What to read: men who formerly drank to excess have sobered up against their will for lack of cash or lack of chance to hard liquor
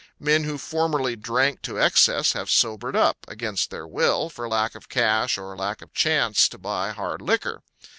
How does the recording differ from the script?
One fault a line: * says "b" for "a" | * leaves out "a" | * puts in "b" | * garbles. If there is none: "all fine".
* puts in "buy"